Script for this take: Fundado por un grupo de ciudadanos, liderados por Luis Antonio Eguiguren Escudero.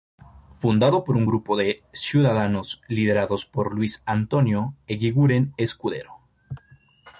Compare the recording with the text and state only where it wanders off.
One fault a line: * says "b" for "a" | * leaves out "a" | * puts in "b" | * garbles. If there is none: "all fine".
all fine